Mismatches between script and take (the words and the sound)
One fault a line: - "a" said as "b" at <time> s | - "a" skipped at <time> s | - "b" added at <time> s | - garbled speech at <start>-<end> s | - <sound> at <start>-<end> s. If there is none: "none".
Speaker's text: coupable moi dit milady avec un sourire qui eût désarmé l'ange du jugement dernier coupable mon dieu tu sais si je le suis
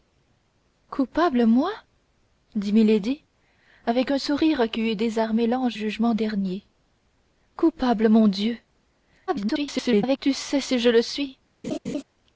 - "du" skipped at 5.8 s
- garbled speech at 9.3-10.2 s
- laugh at 11.6-12.0 s